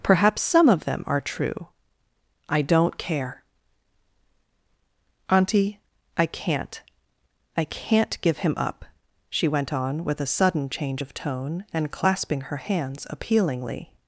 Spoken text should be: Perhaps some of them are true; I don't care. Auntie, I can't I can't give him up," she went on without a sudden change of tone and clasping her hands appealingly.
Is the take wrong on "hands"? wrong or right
right